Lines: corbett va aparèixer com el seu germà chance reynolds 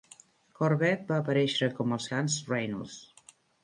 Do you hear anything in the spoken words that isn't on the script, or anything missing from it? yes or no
yes